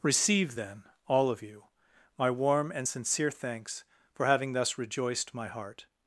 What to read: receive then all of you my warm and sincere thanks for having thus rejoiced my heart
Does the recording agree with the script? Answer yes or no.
yes